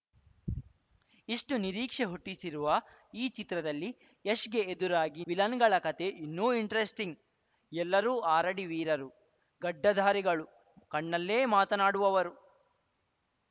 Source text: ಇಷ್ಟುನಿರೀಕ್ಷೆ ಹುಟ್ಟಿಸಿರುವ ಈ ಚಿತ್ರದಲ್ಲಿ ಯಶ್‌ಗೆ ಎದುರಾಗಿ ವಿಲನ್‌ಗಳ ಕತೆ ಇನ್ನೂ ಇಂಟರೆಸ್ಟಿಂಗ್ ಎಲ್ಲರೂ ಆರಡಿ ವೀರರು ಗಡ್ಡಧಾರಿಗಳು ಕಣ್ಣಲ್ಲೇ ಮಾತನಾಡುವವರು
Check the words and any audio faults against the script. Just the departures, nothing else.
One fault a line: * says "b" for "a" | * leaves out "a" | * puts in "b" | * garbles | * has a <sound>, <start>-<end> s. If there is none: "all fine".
all fine